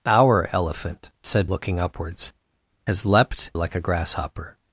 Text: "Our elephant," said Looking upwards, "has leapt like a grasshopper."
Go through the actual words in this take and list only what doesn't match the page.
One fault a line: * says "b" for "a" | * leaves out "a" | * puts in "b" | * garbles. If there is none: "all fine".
all fine